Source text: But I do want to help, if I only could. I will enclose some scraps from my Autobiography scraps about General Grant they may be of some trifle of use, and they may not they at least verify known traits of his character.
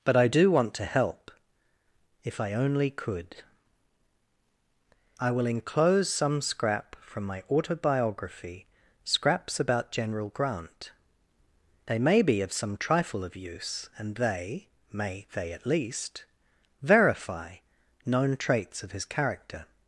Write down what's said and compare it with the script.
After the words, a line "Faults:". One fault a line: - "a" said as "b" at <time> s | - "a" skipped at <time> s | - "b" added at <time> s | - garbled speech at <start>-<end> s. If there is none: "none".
But I do want to help, if I only could. I will enclose some scrap from my Autobiography scraps about General Grant they may be of some trifle of use, and they may they at least verify known traits of his character.
Faults:
- "scraps" said as "scrap" at 6.4 s
- "not" skipped at 15.3 s